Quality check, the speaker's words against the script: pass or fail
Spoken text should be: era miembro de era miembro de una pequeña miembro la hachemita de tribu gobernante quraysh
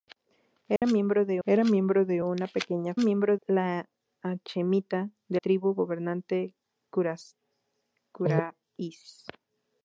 pass